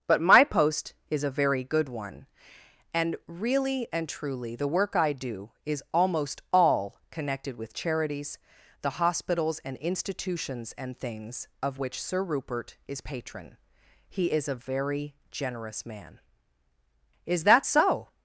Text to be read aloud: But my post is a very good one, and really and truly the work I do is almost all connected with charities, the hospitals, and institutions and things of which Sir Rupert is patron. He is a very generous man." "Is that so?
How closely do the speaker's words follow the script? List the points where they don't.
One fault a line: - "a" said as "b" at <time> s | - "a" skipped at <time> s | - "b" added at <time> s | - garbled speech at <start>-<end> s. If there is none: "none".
none